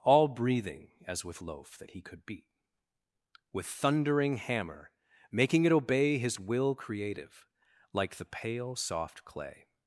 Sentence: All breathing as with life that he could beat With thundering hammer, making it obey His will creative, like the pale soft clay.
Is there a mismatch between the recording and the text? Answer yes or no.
yes